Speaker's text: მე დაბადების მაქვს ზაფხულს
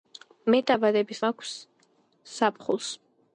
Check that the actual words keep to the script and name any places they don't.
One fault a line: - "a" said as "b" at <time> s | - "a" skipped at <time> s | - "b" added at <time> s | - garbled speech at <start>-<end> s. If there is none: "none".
none